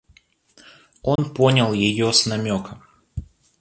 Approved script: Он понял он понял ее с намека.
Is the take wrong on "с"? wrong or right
right